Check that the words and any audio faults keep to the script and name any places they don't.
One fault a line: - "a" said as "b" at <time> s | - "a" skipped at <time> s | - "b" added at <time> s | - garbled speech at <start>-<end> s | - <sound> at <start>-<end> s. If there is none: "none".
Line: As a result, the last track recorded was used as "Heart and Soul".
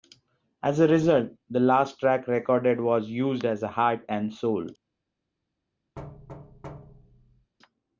- thud at 6.0-7.5 s